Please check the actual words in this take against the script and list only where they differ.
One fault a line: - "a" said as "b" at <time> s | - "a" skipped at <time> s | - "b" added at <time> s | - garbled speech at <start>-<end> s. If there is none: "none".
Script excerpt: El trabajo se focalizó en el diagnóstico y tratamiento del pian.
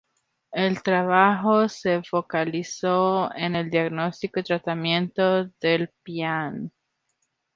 none